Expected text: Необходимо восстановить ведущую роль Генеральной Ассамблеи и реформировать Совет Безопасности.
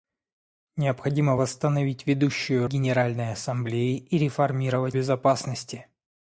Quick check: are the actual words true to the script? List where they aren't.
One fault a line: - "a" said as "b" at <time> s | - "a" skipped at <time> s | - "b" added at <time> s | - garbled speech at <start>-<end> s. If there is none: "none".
- "роль" skipped at 2.7 s
- "Совет" skipped at 5.0 s